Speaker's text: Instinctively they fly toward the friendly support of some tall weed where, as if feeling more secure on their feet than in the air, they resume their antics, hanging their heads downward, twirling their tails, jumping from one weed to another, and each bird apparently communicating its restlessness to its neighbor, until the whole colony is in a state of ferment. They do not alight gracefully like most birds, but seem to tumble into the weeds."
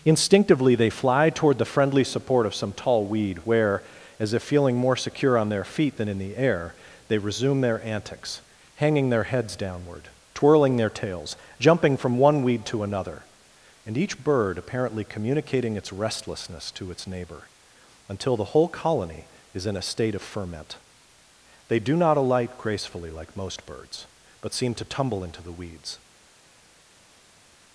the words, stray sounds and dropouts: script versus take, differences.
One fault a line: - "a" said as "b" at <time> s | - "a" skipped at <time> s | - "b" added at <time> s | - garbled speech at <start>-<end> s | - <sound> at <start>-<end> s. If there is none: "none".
none